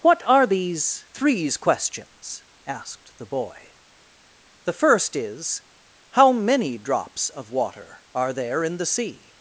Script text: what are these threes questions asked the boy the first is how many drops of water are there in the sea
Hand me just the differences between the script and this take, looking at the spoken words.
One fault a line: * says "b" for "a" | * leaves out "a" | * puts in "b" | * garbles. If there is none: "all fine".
all fine